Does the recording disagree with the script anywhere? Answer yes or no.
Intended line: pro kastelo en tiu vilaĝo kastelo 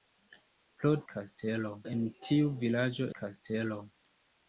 no